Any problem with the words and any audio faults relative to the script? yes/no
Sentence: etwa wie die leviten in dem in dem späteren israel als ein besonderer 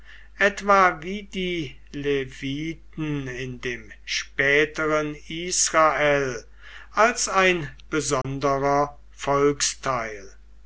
yes